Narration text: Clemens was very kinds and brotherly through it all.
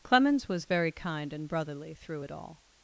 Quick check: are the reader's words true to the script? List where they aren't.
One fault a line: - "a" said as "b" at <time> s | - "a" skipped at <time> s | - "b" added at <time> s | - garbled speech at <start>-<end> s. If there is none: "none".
- "kinds" said as "kind" at 0.9 s